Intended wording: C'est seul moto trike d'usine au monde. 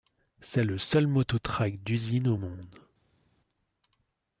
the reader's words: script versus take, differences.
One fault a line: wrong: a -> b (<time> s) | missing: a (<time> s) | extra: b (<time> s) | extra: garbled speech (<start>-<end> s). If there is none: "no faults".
extra: le (0.6 s)